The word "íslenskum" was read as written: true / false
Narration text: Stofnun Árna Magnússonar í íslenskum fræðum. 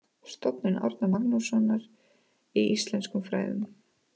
true